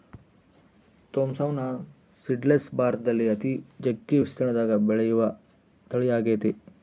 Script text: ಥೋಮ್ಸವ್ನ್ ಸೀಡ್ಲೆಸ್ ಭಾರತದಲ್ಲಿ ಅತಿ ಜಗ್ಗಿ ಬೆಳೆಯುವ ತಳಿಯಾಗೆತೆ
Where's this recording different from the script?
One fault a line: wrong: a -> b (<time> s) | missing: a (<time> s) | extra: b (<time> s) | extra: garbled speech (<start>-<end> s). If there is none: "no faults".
extra: ವಿಸ್ತೀರ್ಣದಗ (4.2 s)